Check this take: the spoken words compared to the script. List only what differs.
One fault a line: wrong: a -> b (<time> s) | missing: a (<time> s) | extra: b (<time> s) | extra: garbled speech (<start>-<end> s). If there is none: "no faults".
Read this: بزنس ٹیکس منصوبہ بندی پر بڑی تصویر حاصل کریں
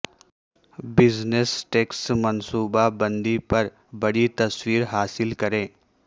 no faults